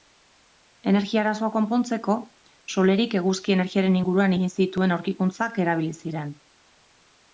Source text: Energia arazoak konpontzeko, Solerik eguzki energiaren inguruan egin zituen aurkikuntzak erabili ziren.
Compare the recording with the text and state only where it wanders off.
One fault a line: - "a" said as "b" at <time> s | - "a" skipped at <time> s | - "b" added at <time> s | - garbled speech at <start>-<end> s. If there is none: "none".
none